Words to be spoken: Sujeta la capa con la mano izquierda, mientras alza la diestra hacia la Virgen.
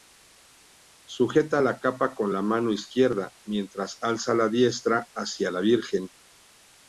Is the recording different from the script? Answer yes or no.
no